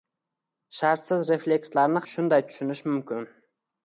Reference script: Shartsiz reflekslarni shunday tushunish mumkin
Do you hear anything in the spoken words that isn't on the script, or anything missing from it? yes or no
no